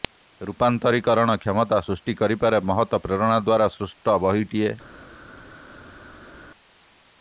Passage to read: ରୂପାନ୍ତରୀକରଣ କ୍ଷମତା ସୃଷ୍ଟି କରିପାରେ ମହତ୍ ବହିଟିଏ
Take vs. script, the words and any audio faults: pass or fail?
fail